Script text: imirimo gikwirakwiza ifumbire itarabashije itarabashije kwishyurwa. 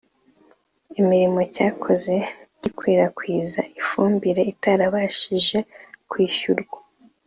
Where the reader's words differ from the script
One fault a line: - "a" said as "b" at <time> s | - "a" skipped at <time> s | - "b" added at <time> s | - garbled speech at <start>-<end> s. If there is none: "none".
- "cyakoze" added at 1.6 s
- "itarabashije" skipped at 5.6 s